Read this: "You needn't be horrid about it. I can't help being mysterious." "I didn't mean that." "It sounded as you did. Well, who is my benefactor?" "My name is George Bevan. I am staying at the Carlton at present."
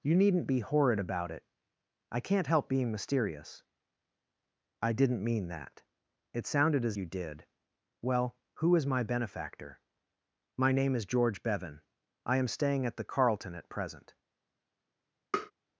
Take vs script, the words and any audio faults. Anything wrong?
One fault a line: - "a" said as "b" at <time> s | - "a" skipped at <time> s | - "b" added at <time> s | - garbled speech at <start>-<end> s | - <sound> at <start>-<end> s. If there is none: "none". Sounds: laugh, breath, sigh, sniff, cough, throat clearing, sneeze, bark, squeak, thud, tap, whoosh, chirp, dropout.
- tap at 15.3-15.5 s